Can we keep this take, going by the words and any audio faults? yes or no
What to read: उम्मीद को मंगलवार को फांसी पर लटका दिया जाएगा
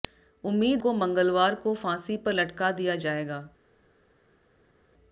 yes